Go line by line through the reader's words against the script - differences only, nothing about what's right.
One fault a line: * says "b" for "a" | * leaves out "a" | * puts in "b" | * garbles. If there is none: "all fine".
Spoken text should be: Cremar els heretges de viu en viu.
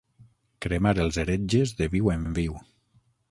* puts in "en"